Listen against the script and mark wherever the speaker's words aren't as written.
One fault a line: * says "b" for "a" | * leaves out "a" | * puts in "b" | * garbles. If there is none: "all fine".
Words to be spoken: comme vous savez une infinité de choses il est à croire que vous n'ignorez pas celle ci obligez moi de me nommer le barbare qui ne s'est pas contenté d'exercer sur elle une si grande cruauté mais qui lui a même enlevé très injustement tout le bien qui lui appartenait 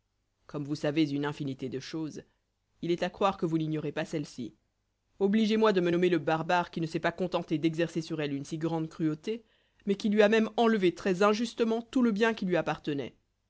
all fine